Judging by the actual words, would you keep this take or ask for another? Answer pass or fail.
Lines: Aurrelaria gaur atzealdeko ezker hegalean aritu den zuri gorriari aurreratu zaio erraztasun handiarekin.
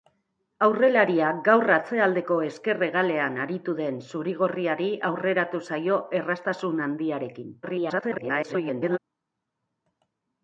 fail